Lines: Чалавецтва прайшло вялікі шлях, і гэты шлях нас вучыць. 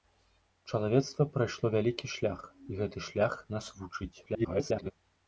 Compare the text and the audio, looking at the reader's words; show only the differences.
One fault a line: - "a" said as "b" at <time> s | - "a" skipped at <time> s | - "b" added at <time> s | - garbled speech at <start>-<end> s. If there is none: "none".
- garbled speech at 4.3-4.9 s